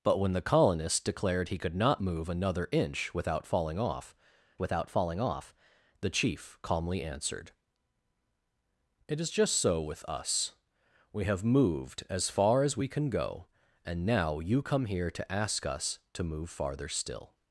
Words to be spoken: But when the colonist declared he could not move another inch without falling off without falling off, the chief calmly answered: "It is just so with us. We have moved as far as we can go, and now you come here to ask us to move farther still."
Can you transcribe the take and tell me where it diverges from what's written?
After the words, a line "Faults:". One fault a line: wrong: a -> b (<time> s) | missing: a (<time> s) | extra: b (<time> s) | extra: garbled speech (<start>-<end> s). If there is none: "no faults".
But when the colonist declared he could not move another inch without falling off without falling off, the chief calmly answered: "It is just so with us. We have moved as far as we can go, and now you come here to ask us to move farther still."
Faults:
no faults